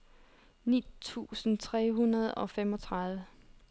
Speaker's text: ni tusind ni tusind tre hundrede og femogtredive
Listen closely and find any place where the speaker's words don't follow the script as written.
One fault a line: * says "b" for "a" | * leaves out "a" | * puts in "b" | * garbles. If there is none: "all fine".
* leaves out "ni tusind"